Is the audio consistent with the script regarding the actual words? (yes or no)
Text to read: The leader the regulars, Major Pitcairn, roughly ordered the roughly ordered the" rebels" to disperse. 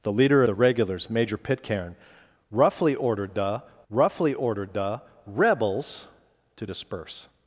yes